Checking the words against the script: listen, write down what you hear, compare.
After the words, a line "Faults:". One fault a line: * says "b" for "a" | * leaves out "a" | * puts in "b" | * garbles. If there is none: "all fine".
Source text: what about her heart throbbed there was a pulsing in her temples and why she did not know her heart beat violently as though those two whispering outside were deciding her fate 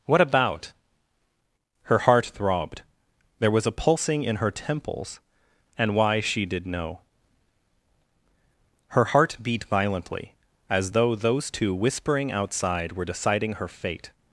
what about her heart throbbed there was a pulsing in her temples and why she did know her heart beat violently as though those two whispering outside were deciding her fate
Faults:
* leaves out "not"